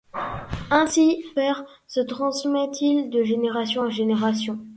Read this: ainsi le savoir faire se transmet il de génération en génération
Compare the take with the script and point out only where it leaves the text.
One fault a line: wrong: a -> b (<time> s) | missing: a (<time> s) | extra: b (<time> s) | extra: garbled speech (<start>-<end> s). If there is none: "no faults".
missing: le savoir (1.2 s)